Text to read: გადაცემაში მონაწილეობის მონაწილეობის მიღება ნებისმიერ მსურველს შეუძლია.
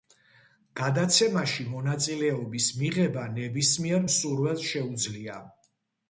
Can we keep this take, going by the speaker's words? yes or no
no